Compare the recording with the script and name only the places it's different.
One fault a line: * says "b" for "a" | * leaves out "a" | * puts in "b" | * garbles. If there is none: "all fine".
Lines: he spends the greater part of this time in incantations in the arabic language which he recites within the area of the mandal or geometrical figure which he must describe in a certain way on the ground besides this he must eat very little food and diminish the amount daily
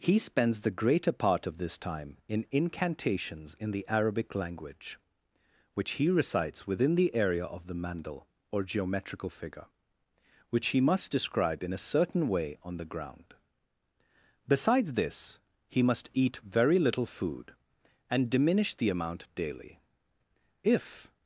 * puts in "if"